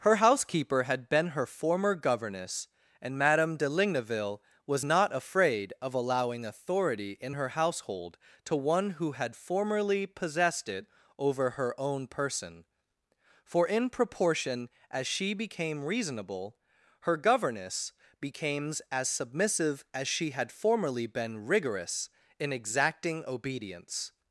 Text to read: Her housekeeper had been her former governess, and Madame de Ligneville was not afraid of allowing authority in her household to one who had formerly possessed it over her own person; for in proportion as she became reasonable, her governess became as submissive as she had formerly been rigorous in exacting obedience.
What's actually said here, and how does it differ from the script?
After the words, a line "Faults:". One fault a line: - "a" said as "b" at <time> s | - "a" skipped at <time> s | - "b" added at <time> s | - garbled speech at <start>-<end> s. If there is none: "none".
Her housekeeper had been her former governess, and Madame de Ligneville was not afraid of allowing authority in her household to one who had formerly possessed it over her own person; for in proportion as she became reasonable, her governess became as submissive as she had formerly been rigorous in exacting obedience.
Faults:
none